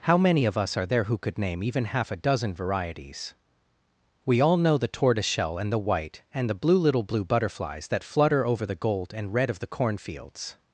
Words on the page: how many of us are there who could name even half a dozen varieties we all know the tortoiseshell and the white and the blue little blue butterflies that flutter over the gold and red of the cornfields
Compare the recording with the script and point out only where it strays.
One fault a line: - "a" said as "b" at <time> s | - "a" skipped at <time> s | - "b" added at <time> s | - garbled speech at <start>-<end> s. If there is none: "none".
none